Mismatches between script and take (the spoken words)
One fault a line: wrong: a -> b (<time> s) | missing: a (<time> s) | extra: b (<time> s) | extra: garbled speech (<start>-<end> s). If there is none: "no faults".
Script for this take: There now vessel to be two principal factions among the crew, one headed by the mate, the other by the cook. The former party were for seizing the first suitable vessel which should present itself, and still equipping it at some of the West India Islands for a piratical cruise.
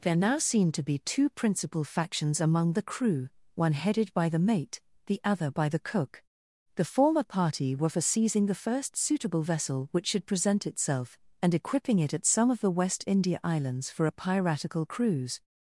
wrong: vessel -> seemed (0.4 s)
missing: still (11.5 s)